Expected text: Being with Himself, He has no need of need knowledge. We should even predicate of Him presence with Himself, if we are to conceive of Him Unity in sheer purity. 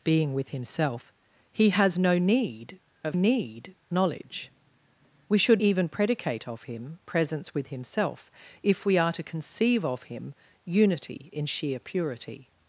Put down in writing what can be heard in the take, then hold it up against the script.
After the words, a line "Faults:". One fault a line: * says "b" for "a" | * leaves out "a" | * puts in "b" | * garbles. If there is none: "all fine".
Being with Himself, He has no need of need knowledge. We should even predicate of Him presence with Himself, if we are to conceive of Him Unity in sheer purity.
Faults:
all fine